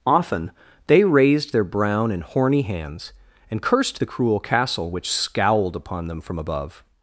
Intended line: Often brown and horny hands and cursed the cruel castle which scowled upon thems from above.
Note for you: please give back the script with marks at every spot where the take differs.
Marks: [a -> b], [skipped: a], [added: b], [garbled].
Often [added: they raised their] brown and horny hands and cursed the cruel castle which scowled upon [thems -> them] from above.